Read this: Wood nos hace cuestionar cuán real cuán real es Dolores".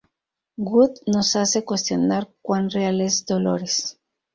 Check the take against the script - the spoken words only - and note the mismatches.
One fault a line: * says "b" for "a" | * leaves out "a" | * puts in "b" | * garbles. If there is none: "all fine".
* leaves out "cuán real"